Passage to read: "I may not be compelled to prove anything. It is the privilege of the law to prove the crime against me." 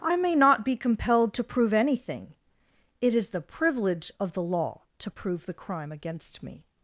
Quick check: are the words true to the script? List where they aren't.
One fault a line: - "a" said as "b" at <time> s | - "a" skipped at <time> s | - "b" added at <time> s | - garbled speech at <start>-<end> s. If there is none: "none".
none